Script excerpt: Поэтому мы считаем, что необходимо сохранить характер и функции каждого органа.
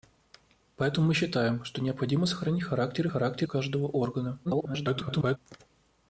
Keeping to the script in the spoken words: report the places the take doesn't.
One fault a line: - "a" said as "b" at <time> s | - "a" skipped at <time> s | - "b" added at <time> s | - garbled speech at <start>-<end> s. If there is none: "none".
- "функции" said as "характер" at 3.1 s
- garbled speech at 4.4-5.4 s